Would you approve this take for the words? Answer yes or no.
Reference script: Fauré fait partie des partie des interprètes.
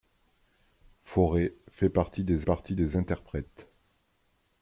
yes